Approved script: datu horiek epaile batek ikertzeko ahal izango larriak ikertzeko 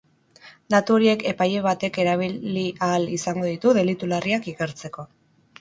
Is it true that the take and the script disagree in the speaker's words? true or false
true